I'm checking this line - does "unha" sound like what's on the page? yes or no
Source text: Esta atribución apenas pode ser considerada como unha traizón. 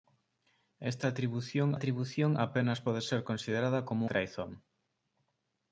no